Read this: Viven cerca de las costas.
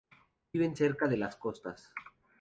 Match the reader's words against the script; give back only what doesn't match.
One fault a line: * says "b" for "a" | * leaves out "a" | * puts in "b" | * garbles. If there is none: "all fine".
all fine